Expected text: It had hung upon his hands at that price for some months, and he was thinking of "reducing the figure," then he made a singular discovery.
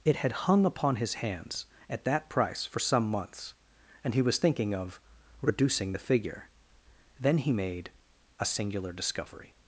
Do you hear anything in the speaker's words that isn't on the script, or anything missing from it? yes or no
no